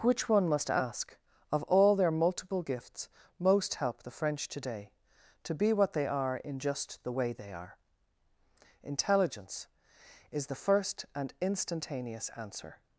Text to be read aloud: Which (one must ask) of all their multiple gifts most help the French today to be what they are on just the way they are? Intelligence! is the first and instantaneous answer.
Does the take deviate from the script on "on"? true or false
true